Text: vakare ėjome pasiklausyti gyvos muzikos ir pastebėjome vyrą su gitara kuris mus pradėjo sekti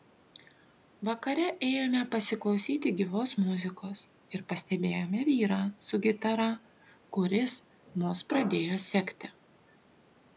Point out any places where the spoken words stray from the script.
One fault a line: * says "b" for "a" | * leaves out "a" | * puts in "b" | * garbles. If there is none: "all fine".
all fine